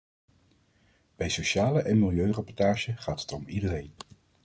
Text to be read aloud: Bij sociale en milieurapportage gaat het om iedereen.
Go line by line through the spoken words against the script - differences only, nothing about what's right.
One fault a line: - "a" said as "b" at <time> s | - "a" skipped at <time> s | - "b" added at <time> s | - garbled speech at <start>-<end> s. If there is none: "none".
none